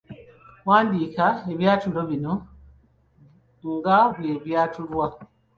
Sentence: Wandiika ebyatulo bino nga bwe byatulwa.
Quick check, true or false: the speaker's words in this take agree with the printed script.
true